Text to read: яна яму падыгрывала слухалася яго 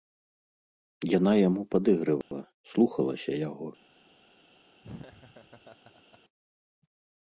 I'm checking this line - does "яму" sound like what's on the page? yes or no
yes